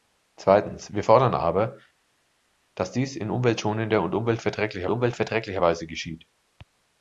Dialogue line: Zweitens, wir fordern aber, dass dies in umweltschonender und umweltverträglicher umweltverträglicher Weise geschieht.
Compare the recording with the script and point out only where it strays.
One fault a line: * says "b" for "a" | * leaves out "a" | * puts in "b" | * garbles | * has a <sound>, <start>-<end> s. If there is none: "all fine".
all fine